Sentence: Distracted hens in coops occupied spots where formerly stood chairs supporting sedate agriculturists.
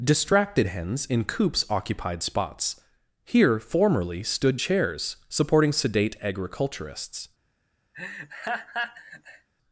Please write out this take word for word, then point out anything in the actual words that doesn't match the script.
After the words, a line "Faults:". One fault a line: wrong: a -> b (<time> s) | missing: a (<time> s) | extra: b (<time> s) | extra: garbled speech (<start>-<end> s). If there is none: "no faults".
Distracted hens in coops occupied spots here formerly stood chairs supporting sedate agriculturists.
Faults:
wrong: where -> here (3.3 s)